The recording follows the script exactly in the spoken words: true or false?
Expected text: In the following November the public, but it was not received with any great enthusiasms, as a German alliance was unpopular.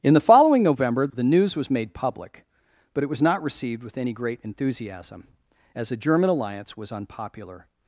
false